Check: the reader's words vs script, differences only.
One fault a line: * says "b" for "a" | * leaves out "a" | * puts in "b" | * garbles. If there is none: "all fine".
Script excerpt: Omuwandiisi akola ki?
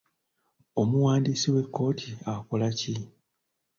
* puts in "w'ekkooti"